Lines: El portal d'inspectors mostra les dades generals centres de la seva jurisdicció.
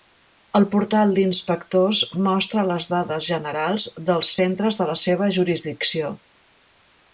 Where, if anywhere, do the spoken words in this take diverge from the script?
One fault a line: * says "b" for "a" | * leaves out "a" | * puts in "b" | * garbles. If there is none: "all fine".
* puts in "dels"